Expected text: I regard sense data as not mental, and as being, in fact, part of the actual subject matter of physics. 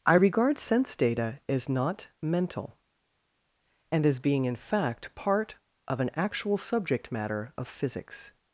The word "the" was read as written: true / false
false